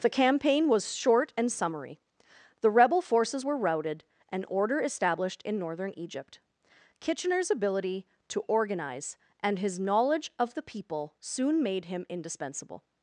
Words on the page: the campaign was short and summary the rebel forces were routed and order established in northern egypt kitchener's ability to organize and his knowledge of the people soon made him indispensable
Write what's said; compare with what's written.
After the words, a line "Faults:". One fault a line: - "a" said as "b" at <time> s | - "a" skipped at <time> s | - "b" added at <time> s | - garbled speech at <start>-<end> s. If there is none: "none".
the campaign was short and summary the rebel forces were routed and order established in northern egypt kitchener's ability to organize and his knowledge of the people soon made him indispensable
Faults:
none